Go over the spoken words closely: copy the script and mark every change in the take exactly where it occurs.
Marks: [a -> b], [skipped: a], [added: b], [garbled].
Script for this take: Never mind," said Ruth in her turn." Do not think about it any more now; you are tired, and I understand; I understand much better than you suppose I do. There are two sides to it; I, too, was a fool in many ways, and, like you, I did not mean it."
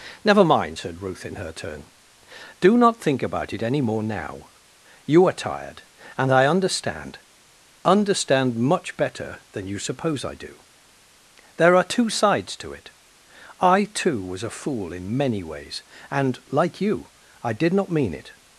Never mind," said Ruth in her turn." Do not think about it any more now; you are tired, and I understand; [skipped: I] understand much better than you suppose I do. There are two sides to it; I, too, was a fool in many ways, and, like you, I did not mean it."